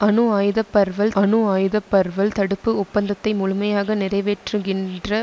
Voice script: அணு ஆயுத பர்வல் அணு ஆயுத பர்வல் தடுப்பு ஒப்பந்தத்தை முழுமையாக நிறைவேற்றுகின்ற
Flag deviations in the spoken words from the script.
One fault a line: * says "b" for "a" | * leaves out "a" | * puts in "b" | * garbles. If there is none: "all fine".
all fine